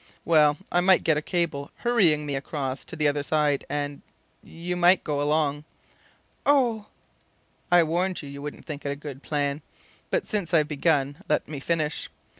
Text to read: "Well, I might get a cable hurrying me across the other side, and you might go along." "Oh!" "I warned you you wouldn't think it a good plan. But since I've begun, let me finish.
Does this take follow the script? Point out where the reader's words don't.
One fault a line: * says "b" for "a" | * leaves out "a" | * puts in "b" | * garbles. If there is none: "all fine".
* puts in "to"